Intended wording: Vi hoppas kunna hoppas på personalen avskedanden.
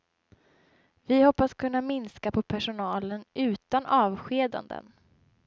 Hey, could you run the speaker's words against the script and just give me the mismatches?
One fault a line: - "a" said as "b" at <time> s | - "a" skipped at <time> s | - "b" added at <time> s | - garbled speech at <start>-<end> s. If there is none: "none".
- "hoppas" said as "minska" at 1.8 s
- "utan" added at 3.3 s